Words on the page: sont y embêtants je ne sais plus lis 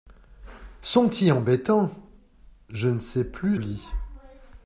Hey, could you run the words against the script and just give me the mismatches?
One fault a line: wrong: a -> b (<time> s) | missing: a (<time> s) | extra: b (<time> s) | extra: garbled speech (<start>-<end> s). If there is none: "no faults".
no faults